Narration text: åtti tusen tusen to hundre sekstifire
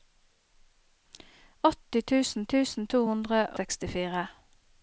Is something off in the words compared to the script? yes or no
no